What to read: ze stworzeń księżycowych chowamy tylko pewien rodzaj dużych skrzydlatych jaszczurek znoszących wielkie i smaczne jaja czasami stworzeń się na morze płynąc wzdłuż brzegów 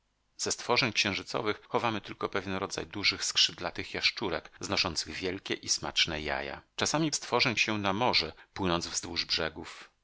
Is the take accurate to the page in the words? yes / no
yes